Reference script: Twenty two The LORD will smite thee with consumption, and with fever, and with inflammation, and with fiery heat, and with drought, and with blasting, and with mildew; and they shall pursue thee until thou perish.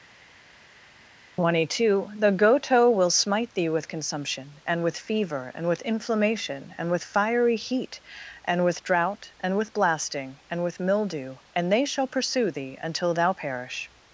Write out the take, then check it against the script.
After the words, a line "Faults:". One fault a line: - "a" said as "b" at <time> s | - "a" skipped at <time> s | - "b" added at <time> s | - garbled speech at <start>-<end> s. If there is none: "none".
Twenty two The Goto will smite thee with consumption, and with fever, and with inflammation, and with fiery heat, and with drought, and with blasting, and with mildew; and they shall pursue thee until thou perish.
Faults:
- "LORD" said as "Goto" at 2.3 s